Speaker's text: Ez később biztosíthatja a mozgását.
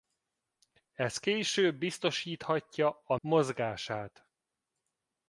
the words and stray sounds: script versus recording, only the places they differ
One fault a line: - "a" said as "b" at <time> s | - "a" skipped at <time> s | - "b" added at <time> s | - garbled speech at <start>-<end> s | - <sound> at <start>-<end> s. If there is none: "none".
none